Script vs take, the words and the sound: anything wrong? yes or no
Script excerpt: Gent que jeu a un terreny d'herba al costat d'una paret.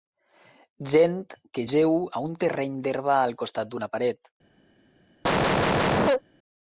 yes